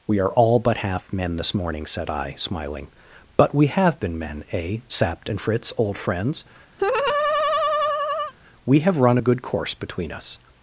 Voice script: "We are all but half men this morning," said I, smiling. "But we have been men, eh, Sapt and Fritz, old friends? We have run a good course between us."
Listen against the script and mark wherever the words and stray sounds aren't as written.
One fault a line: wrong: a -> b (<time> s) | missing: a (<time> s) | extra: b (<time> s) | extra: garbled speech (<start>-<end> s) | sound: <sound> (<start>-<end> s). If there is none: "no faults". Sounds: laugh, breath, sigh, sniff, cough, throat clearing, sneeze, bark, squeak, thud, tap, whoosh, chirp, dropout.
sound: laugh (6.8-8.3 s)